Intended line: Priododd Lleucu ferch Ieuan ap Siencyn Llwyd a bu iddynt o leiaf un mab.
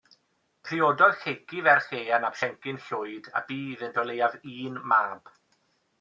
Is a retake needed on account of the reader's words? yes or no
no